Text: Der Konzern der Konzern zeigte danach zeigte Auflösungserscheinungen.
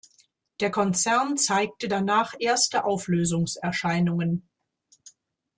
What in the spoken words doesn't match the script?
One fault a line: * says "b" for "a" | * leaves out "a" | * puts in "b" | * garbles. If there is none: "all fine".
* leaves out "der Konzern"
* says "erste" for "zeigte"